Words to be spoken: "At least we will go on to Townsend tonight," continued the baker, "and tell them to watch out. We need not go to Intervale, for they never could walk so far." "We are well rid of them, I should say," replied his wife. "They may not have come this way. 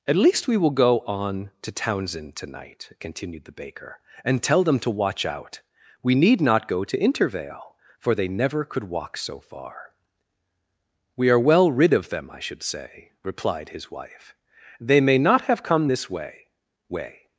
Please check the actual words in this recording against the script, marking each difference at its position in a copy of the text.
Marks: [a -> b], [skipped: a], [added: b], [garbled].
"At least we will go on to Townsend tonight," continued the baker, "and tell them to watch out. We need not go to Intervale, for they never could walk so far." "We are well rid of them, I should say," replied his wife. "They may not have come this way. [added: way]